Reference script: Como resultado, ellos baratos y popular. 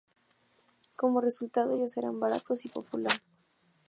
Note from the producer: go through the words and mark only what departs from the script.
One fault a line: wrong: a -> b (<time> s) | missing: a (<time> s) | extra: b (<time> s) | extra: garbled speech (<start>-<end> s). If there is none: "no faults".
extra: eran (2.0 s)